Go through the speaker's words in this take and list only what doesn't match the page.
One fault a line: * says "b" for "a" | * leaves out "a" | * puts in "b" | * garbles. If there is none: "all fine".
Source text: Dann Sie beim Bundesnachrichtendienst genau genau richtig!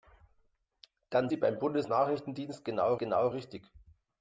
all fine